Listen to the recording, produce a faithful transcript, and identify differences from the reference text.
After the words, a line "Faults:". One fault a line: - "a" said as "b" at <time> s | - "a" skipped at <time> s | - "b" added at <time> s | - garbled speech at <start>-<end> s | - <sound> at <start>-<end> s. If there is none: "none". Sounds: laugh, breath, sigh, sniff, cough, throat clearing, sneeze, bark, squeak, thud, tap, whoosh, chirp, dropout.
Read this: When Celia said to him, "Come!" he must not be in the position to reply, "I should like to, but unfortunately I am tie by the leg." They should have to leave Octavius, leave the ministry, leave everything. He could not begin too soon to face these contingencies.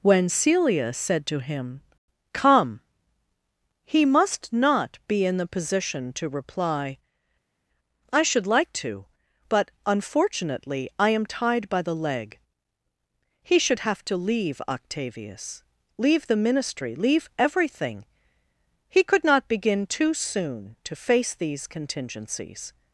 When Celia said to him, "Come!" he must not be in the position to reply, "I should like to, but unfortunately I am tied by the leg." He should have to leave Octavius, leave the ministry, leave everything. He could not begin too soon to face these contingencies.
Faults:
- "tie" said as "tied" at 11.3 s
- "They" said as "He" at 13.4 s